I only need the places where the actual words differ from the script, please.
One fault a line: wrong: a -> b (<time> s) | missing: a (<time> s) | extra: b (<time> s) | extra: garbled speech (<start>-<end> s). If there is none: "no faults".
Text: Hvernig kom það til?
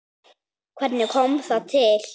no faults